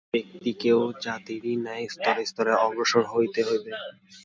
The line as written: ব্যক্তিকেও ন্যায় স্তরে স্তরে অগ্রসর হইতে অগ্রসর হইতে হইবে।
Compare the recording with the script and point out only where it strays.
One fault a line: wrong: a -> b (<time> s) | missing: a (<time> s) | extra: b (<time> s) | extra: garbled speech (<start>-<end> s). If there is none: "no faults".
extra: জাতিরই (1.0 s)
missing: অগ্রসর হইতে (3.4 s)